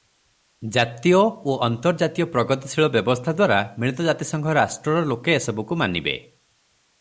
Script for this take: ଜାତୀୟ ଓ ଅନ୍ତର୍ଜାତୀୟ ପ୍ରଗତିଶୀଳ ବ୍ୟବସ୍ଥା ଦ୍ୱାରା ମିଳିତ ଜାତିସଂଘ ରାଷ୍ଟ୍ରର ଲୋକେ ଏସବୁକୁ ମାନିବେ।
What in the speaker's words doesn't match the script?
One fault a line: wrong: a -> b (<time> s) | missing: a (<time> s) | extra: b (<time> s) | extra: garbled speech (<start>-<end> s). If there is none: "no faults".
no faults